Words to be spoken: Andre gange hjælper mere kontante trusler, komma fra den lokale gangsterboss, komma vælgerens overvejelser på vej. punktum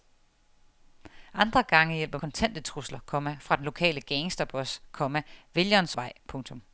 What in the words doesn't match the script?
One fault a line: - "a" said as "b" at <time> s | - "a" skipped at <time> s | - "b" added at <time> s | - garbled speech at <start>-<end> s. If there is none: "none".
- "mere" skipped at 2.2 s
- "overvejelser på" skipped at 6.0 s